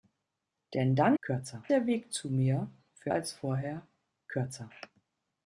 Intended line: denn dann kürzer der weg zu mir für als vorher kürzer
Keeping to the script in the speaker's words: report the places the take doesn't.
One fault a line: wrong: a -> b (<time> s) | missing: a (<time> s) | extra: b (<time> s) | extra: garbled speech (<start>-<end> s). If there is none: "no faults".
no faults